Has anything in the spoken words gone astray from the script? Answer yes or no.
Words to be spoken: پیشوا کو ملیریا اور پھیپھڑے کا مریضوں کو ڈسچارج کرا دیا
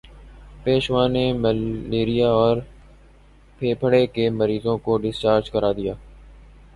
yes